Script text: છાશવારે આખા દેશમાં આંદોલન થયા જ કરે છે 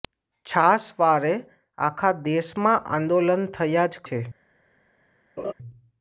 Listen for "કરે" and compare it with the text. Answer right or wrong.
wrong